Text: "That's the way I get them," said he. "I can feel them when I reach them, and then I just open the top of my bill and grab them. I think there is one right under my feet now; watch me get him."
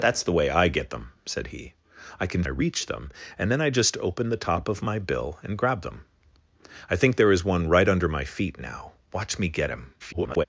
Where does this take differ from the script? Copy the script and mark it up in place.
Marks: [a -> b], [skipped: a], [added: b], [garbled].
"That's the way I get them," said he. "I can [skipped: feel them when] I reach them, and then I just open the top of my bill and grab them. I think there is one right under my feet now; watch me get him." [garbled]